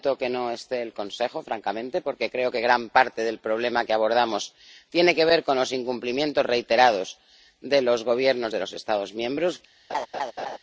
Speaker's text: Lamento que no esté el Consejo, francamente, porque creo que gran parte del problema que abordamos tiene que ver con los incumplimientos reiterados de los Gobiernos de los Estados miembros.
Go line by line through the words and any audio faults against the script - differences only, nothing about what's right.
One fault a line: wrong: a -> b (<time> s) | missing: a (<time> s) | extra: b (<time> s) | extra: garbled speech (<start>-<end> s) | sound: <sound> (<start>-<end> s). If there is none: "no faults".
sound: laugh (9.9-10.6 s)